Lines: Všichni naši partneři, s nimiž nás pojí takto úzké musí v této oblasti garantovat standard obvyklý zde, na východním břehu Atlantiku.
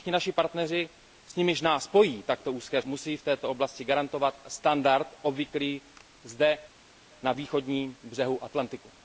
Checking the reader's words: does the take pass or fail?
pass